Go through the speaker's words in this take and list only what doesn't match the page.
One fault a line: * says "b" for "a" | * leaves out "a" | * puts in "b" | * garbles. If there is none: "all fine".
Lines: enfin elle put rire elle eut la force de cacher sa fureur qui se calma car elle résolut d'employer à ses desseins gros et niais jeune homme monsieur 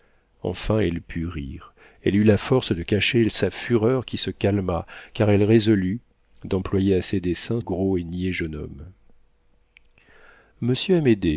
all fine